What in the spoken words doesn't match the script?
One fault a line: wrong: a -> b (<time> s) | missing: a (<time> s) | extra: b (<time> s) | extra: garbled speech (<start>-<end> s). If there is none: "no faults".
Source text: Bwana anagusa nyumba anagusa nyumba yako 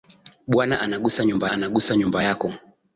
no faults